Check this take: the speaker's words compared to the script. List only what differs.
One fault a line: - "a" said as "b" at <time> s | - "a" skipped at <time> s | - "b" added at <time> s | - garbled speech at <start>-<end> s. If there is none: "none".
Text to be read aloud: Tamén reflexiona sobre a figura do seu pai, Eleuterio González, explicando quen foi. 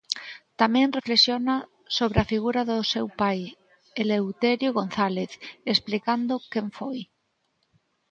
none